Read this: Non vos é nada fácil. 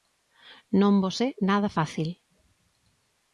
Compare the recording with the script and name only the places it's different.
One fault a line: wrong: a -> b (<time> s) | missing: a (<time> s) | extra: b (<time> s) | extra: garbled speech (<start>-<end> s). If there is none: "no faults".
no faults